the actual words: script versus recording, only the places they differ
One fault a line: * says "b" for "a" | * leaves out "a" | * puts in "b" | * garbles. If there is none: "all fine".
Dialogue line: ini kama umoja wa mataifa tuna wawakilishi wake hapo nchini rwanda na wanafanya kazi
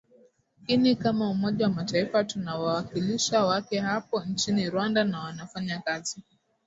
all fine